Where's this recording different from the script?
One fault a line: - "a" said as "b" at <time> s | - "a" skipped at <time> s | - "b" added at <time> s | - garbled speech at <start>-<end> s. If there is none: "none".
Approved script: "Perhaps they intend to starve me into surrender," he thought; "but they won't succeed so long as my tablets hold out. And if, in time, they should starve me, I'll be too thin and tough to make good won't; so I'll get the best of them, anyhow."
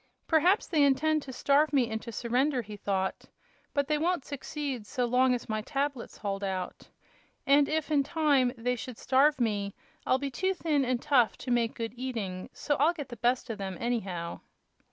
- "won't" said as "eating" at 12.0 s